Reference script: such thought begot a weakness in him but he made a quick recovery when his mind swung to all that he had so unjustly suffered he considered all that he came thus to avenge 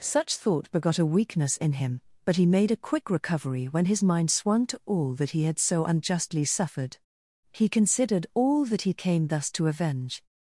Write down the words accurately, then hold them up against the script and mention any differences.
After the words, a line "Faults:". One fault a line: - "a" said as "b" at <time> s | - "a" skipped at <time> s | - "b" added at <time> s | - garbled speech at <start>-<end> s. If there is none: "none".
such thought begot a weakness in him but he made a quick recovery when his mind swung to all that he had so unjustly suffered he considered all that he came thus to avenge
Faults:
none